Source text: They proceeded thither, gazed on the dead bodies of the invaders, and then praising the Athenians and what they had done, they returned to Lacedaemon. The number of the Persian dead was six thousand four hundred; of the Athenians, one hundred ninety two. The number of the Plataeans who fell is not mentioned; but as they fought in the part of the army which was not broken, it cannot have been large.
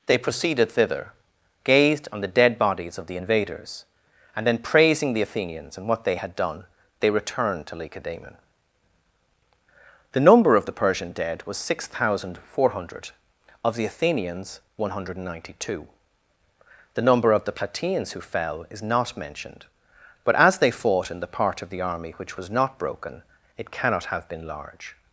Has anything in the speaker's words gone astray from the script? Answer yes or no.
no